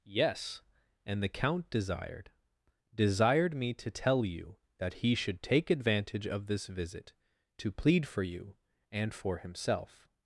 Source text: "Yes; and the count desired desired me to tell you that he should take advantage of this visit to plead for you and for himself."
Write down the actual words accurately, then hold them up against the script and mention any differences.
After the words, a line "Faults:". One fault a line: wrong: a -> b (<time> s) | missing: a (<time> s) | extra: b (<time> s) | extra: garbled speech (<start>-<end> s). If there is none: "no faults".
"Yes; and the count desired desired me to tell you that he should take advantage of this visit to plead for you and for himself."
Faults:
no faults